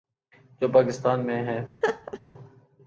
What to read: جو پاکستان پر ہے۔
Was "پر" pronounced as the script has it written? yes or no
no